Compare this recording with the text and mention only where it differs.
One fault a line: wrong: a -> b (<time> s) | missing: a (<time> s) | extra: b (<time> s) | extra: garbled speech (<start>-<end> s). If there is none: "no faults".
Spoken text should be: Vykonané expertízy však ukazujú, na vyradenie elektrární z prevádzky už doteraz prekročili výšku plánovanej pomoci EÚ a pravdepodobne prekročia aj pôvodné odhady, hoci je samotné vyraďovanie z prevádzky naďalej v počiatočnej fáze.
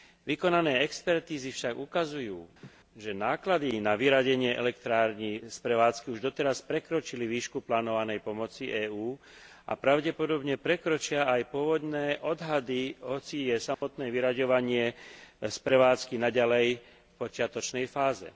extra: že náklady (2.9 s)